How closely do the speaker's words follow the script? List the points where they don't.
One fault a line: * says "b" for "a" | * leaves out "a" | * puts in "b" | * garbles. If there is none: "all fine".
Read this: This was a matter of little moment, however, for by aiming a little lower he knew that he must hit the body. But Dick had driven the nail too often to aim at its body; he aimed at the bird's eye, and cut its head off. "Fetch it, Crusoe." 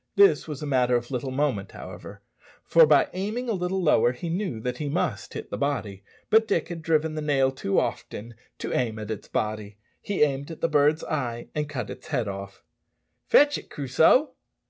all fine